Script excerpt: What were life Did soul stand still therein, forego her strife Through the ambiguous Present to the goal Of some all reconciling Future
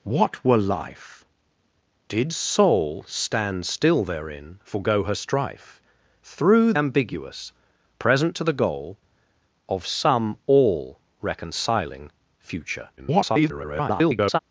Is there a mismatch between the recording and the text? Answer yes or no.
yes